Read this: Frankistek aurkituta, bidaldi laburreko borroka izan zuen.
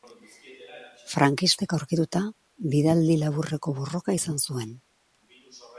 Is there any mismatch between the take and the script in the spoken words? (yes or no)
no